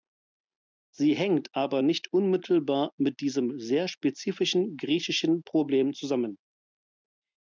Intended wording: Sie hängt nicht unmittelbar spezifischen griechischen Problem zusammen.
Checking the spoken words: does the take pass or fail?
fail